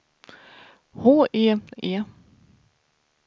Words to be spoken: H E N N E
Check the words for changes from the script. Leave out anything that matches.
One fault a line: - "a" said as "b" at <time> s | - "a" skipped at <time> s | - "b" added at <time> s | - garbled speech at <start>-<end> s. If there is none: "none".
- "N N" skipped at 1.6 s